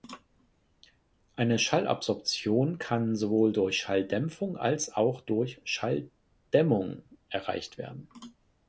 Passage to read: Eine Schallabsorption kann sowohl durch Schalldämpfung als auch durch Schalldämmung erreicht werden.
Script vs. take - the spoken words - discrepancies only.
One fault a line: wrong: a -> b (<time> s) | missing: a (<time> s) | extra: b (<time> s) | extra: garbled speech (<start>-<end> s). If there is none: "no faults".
no faults